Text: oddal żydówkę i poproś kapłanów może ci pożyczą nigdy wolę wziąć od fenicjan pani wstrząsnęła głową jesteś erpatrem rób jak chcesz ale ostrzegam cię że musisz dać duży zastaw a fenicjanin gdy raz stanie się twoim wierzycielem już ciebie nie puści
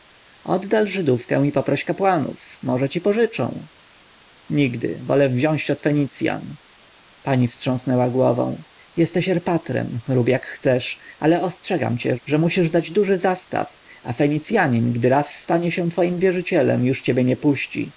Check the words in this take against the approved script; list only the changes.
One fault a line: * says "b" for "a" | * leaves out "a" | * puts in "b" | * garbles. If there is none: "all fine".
all fine